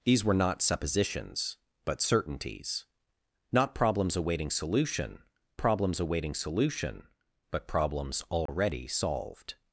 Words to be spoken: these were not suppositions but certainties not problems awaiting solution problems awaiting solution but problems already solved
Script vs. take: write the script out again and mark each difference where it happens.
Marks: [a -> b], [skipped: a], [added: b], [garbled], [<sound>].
these were not suppositions but certainties not problems awaiting solution problems awaiting solution but problems already [dropout] solved